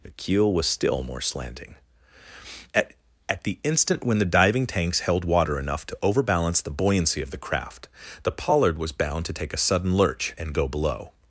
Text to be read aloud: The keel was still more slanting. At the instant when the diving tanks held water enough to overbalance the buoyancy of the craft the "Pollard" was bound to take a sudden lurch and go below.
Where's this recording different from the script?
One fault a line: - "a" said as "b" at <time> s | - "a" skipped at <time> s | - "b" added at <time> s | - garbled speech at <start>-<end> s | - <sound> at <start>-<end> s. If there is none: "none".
- "At" added at 3.3 s